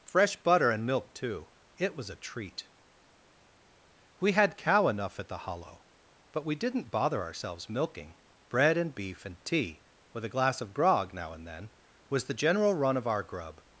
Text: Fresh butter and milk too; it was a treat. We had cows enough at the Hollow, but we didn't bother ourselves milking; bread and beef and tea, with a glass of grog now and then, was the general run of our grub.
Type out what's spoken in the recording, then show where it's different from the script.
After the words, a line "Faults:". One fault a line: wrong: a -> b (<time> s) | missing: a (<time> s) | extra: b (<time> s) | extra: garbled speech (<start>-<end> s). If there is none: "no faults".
Fresh butter and milk too; it was a treat. We had cow enough at the Hollow, but we didn't bother ourselves milking; bread and beef and tea, with a glass of grog now and then, was the general run of our grub.
Faults:
wrong: cows -> cow (4.6 s)